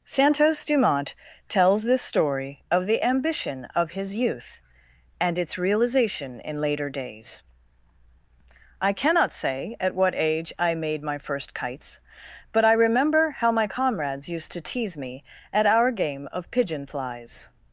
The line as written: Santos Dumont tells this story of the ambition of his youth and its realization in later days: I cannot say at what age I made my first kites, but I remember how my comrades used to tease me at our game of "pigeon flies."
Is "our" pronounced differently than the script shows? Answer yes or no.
no